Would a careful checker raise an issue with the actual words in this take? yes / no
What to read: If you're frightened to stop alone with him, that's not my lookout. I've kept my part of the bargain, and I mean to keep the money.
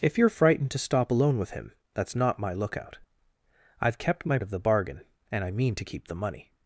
yes